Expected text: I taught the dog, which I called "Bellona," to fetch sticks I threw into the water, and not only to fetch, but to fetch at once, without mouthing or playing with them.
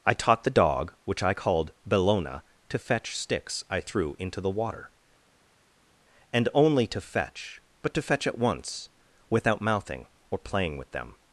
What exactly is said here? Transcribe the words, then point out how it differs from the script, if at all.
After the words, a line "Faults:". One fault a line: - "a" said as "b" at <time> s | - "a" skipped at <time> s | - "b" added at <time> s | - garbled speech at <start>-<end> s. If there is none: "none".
I taught the dog, which I called "Bellona," to fetch sticks I threw into the water, and only to fetch, but to fetch at once, without mouthing or playing with them.
Faults:
- "not" skipped at 6.5 s